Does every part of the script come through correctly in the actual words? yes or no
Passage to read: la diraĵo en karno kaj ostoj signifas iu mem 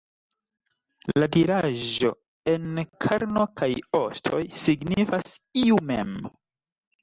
yes